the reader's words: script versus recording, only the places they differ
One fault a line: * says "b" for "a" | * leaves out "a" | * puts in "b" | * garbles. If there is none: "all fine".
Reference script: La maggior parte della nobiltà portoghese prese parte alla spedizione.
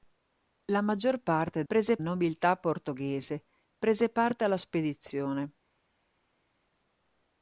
* says "prese" for "della"